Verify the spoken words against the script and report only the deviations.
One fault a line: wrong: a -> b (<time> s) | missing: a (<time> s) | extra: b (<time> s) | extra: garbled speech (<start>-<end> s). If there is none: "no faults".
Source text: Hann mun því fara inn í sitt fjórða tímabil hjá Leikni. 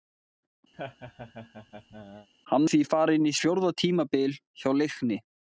missing: mun (2.6 s)
missing: sitt (3.4 s)